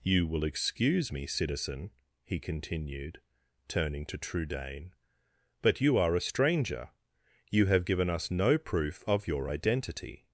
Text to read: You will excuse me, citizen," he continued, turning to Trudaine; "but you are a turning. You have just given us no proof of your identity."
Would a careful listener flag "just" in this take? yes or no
yes